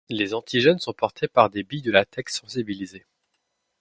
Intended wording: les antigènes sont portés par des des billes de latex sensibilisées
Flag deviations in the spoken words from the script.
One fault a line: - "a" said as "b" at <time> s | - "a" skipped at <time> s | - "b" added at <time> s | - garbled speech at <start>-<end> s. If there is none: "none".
- "des" skipped at 1.6 s